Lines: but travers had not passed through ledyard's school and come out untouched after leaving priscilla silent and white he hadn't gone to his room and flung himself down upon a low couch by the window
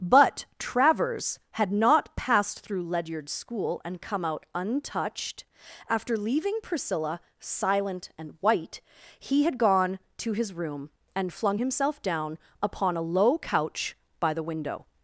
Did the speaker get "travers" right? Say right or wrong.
right